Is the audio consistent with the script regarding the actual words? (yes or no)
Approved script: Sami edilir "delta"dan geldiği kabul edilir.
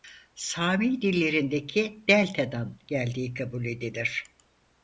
no